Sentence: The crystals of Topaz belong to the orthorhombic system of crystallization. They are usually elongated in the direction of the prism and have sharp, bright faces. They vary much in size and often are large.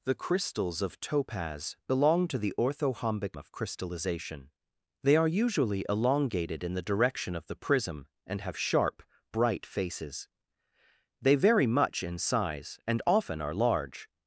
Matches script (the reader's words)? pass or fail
fail